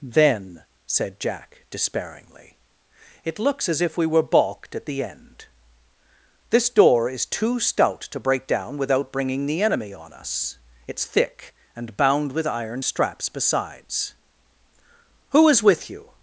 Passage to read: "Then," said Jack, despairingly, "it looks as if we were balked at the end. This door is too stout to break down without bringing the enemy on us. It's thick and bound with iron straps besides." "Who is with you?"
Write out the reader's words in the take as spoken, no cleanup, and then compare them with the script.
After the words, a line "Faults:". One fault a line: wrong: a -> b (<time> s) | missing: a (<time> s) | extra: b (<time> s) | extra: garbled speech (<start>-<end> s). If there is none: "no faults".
"Then," said Jack, despairingly, "it looks as if we were balked at the end. This door is too stout to break down without bringing the enemy on us. It's thick and bound with iron straps besides." "Who is with you?"
Faults:
no faults